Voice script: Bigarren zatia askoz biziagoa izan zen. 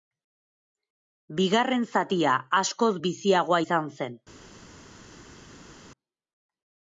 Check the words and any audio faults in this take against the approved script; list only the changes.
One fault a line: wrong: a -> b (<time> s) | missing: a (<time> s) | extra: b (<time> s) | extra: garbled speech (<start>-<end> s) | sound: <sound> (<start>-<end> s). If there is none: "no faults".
no faults